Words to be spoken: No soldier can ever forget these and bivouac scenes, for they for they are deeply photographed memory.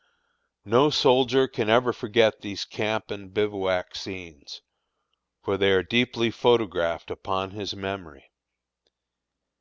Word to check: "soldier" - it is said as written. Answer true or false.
true